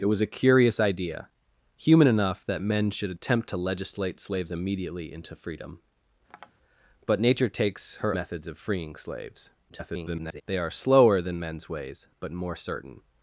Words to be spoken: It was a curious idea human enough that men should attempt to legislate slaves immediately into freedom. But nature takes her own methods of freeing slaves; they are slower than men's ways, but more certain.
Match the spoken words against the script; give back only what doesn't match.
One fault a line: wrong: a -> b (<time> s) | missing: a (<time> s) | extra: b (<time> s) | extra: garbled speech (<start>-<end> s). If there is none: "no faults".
missing: own (8.2 s)
extra: garbled speech (9.7-10.4 s)